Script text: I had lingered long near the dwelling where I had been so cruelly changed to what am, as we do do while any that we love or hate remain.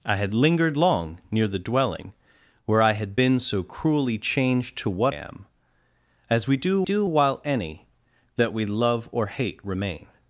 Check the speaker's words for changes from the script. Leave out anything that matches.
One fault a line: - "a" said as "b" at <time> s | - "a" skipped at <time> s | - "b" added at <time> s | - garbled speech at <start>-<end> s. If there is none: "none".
none